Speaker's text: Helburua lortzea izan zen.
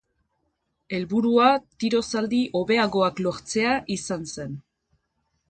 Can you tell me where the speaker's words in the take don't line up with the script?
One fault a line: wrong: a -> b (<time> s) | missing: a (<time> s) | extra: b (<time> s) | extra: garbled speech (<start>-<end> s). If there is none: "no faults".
extra: tiro zaldi hobeagoak (1.8 s)